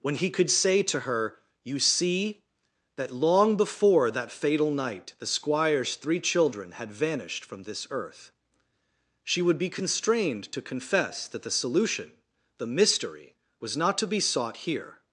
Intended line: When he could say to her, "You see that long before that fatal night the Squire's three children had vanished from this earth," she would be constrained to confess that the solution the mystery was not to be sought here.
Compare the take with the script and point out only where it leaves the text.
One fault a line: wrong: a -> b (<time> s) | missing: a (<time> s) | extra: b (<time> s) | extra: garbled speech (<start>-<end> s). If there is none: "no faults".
no faults